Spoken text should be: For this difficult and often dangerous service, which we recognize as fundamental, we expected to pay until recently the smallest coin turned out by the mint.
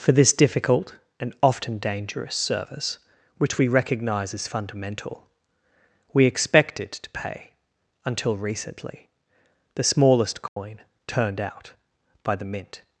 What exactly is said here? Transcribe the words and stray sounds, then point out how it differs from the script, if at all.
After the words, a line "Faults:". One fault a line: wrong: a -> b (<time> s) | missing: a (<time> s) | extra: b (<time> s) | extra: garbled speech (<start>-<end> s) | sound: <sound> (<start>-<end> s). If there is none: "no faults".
For this difficult and often dangerous service, which we recognize as fundamental, we expected to pay until recently the smallest coin turned out by the mint.
Faults:
sound: dropout (10.5-10.6 s)